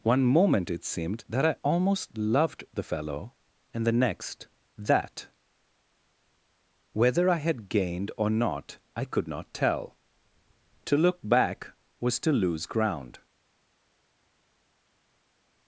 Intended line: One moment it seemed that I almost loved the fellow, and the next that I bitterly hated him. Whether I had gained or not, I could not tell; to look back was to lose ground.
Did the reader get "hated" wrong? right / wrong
wrong